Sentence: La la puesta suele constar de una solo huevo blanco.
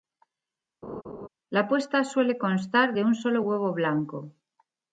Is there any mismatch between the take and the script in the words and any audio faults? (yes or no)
yes